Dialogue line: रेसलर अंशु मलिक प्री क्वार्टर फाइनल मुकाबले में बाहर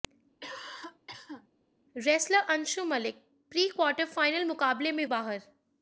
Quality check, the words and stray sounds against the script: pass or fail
fail